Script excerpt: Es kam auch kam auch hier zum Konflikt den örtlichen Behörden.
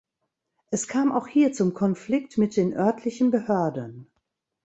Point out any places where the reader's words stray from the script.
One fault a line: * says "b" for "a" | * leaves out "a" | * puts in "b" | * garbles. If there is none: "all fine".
* leaves out "kam auch"
* puts in "mit"